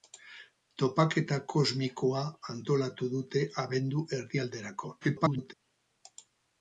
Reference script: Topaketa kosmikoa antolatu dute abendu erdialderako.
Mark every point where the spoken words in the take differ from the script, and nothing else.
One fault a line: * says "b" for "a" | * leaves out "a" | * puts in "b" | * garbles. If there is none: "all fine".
* garbles